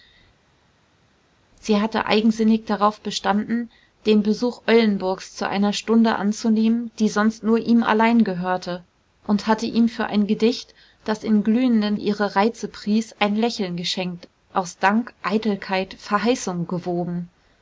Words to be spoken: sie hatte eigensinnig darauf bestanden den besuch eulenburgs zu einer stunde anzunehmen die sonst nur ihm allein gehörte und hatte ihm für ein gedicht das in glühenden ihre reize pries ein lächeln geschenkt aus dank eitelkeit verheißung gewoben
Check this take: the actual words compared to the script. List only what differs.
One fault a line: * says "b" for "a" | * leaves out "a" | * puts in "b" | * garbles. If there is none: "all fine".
all fine